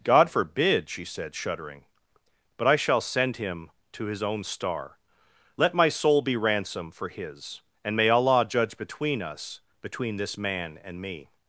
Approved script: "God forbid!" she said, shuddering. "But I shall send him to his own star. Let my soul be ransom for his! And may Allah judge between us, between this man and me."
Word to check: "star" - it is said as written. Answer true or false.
true